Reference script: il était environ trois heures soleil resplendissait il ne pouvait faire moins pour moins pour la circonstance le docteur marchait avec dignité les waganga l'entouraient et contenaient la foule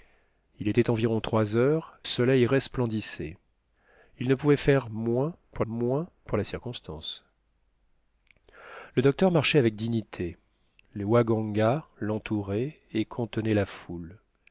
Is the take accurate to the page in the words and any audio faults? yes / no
yes